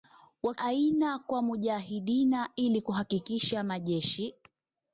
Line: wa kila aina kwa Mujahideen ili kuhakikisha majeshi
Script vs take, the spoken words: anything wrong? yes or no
yes